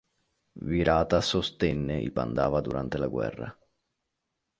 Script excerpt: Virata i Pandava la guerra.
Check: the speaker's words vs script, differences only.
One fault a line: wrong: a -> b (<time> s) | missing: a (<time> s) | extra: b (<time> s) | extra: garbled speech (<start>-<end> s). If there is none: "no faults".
extra: sostenne (1.2 s)
extra: durante (2.6 s)